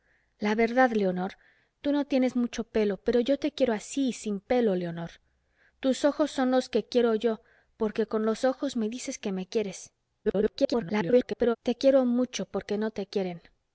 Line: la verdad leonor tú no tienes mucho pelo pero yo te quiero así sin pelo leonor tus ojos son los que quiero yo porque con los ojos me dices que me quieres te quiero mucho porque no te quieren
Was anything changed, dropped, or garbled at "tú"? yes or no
no